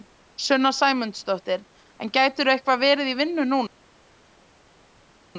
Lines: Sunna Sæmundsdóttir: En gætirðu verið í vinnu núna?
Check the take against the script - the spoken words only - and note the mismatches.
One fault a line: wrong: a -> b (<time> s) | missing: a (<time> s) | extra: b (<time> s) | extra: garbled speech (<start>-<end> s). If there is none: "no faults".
extra: eitthvað (2.5 s)